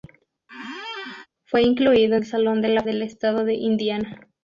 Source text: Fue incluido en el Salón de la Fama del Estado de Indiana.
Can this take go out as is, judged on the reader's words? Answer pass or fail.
fail